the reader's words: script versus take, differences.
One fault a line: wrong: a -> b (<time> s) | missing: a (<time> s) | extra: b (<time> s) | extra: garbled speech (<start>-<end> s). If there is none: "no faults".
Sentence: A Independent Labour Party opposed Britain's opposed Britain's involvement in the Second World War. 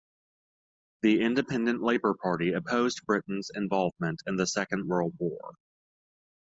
wrong: A -> The (1.0 s)
missing: opposed Britain's (3.5 s)